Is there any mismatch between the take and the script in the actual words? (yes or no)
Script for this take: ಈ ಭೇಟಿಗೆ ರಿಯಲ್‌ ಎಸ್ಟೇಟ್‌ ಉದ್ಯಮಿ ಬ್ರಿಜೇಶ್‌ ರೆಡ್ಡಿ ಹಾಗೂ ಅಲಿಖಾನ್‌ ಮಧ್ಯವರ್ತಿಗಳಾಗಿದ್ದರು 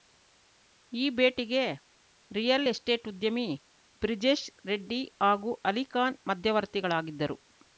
no